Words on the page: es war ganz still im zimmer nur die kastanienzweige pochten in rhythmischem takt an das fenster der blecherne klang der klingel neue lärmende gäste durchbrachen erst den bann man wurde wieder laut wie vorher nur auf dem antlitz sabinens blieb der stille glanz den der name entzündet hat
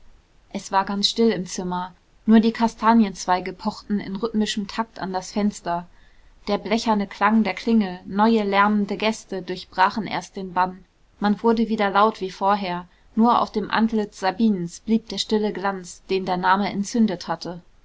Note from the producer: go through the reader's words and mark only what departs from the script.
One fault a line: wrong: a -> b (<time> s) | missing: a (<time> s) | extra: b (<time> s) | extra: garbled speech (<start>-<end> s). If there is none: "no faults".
wrong: hat -> hatte (17.3 s)